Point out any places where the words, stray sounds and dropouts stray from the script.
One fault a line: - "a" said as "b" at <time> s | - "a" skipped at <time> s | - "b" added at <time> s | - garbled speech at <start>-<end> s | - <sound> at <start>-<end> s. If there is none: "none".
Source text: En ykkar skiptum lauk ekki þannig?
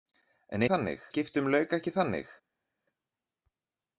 - "ykkar" said as "þannig" at 0.7 s